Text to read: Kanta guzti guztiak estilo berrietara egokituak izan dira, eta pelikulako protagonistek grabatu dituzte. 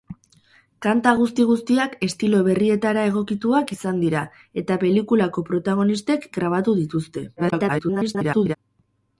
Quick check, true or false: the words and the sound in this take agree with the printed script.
false